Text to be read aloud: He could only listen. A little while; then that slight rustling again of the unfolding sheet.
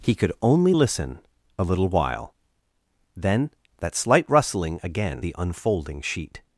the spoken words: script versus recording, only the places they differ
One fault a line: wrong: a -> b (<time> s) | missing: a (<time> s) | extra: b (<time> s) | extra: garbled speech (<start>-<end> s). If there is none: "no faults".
missing: of (5.2 s)